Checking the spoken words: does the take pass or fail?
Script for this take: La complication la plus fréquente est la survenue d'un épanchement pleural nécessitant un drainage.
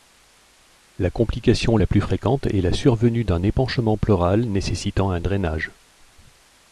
pass